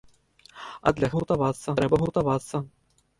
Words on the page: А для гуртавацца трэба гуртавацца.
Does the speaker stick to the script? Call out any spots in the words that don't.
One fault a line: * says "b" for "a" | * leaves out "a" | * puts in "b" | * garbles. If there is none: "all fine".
all fine